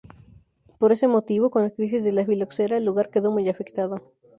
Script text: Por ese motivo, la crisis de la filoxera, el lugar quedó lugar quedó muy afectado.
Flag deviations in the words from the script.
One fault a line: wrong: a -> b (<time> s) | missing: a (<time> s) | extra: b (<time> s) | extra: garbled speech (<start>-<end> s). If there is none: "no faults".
extra: con (1.5 s)
missing: lugar quedó (3.3 s)